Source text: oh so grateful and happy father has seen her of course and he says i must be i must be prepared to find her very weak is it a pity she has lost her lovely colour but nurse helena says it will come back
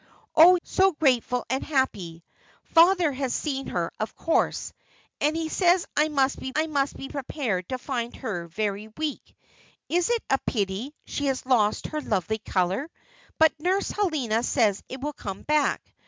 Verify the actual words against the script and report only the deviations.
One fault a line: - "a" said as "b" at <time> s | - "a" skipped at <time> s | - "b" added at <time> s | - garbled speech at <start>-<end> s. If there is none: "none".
none